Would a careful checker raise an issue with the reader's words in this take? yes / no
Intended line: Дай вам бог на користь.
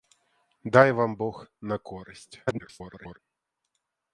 yes